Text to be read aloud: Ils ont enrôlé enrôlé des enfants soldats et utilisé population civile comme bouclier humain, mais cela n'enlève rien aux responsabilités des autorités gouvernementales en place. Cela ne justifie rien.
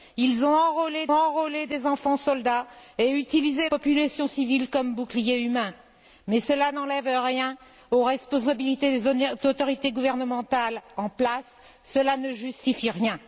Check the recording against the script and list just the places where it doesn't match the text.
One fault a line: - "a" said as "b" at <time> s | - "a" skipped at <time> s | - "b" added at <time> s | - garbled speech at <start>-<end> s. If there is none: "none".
none